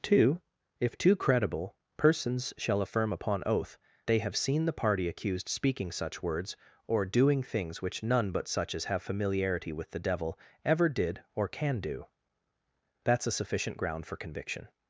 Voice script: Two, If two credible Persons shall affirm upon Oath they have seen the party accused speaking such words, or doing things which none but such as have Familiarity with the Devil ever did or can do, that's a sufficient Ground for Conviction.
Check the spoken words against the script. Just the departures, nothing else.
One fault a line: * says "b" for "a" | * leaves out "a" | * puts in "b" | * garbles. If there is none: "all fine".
all fine